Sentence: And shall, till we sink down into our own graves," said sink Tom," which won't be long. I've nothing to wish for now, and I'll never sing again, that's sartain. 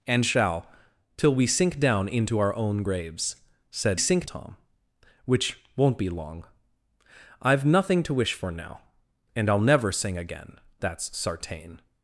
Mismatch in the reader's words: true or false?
false